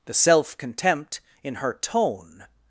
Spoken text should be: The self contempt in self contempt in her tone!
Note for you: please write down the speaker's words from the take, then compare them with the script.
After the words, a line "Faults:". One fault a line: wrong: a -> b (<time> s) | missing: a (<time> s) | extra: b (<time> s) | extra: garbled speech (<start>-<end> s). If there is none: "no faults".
The self contempt in her tone!
Faults:
missing: self contempt in (1.6 s)